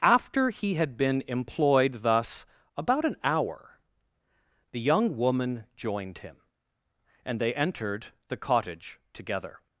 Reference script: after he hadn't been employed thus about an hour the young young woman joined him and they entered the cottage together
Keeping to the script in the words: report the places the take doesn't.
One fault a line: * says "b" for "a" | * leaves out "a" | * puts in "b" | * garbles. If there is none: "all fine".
* says "had" for "hadn't"
* leaves out "young"